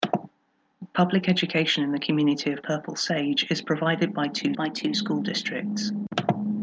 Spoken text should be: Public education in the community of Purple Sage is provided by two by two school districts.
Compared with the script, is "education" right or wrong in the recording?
right